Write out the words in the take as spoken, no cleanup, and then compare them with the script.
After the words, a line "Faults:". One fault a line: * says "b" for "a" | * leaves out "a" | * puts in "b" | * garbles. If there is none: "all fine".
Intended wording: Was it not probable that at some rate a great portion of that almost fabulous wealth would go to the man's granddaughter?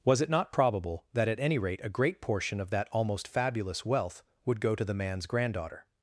Was it not probable that at any rate a great portion of that almost fabulous wealth would go to the man's granddaughter?
Faults:
* says "any" for "some"